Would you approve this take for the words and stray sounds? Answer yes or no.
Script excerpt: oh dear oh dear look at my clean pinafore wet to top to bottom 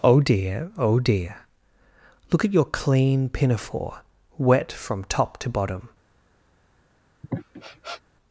no